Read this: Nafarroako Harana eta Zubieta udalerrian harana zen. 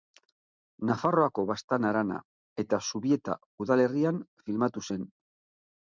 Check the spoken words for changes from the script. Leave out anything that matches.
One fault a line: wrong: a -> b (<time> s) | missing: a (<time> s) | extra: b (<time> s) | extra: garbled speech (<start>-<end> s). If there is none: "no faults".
extra: Baztan (1.5 s)
wrong: harana -> filmatu (4.5 s)